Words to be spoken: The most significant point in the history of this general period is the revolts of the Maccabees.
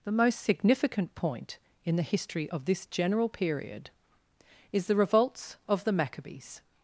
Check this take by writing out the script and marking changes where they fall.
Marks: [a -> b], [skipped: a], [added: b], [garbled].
The most significant point in the history of this general period is the revolts of the Maccabees.